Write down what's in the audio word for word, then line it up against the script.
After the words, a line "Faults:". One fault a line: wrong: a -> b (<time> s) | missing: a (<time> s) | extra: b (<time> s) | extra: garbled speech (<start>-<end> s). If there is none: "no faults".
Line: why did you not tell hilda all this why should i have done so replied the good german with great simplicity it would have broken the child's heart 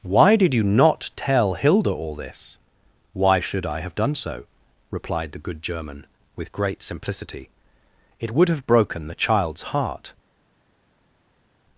why did you not tell hilda all this why should i have done so replied the good german with great simplicity it would have broken the child's heart
Faults:
no faults